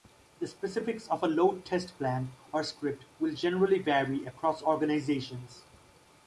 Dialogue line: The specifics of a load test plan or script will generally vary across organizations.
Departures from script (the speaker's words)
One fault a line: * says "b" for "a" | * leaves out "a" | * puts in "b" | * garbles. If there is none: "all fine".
all fine